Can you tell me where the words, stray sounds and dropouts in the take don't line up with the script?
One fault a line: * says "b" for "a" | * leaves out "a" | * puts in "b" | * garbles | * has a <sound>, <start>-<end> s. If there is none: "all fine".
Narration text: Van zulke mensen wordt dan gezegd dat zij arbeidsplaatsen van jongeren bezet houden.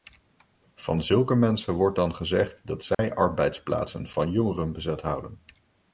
* has a dropout, 2.9-3.0 s